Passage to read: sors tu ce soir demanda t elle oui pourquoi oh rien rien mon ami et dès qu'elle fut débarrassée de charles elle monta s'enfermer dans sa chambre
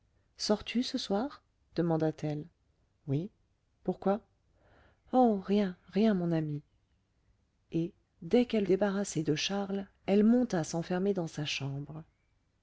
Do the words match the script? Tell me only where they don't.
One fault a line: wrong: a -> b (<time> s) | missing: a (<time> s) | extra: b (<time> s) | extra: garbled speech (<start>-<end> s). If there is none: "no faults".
missing: fut (8.7 s)